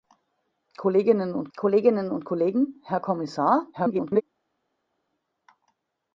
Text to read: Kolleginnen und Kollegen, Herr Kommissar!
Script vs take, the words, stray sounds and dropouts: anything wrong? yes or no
yes